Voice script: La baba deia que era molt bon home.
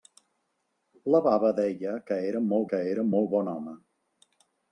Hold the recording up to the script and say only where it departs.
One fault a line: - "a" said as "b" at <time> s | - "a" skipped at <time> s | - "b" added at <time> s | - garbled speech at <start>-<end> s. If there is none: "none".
- "que era molt" added at 2.7 s